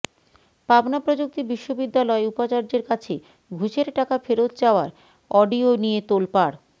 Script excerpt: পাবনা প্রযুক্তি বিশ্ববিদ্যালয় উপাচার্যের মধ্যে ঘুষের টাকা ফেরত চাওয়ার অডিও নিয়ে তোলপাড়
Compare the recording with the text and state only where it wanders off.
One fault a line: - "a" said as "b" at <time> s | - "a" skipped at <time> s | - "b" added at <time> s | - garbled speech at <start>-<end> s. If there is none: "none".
- "মধ্যে" said as "কাছে" at 2.9 s